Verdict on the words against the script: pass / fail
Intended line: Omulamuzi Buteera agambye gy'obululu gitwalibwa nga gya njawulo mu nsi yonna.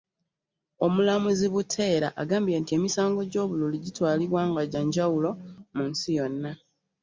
fail